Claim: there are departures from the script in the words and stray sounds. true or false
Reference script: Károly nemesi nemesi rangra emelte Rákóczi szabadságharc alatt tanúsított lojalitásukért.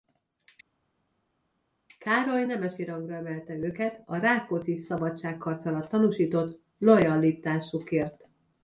true